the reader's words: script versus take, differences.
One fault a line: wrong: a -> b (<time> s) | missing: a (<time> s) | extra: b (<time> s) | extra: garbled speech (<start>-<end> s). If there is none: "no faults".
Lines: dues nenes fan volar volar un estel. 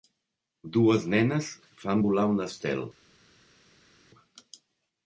missing: volar (2.3 s)